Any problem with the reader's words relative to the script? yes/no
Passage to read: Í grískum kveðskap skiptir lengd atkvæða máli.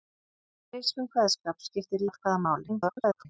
yes